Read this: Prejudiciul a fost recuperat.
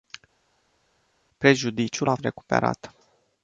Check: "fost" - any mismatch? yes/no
yes